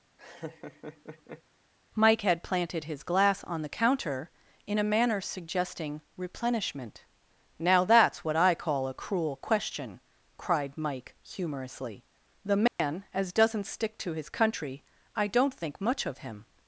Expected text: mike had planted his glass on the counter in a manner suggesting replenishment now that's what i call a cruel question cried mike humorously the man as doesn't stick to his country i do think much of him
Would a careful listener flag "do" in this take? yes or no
yes